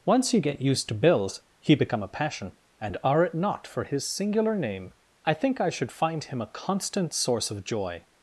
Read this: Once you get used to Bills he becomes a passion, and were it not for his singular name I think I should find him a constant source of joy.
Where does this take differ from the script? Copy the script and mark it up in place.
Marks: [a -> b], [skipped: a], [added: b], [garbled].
Once you get used to Bills he [becomes -> become] a passion, and [were -> are] it not for his singular name I think I should find him a constant source of joy.